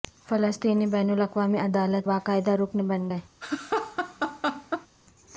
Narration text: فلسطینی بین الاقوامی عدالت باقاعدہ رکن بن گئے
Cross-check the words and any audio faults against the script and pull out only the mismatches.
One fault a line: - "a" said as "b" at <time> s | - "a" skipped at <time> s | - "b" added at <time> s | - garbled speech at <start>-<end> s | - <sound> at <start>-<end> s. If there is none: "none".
- laugh at 3.4-4.9 s